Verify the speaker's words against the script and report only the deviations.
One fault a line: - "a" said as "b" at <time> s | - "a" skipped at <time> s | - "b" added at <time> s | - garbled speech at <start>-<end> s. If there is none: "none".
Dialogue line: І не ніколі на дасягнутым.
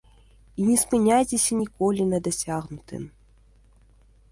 - "спыняйцеся" added at 0.8 s